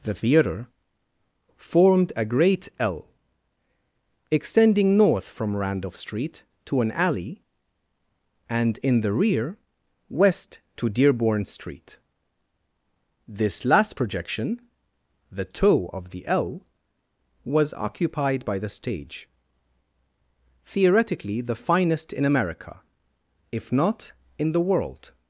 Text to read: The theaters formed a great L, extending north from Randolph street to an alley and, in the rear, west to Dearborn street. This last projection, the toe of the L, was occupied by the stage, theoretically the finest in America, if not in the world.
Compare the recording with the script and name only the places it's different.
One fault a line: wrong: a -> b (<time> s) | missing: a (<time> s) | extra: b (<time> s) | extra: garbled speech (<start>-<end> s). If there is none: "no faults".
wrong: theaters -> theater (0.1 s)